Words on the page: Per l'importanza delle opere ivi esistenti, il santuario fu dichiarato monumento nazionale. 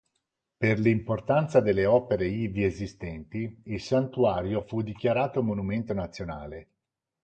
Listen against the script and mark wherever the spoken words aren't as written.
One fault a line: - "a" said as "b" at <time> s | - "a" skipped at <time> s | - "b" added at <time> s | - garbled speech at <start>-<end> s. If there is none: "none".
none